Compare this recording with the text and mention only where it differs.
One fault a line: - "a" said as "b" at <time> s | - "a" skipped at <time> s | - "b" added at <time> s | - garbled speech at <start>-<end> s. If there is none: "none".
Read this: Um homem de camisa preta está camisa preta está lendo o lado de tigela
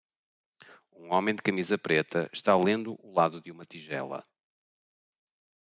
- "camisa preta está" skipped at 2.6 s
- "uma" added at 3.5 s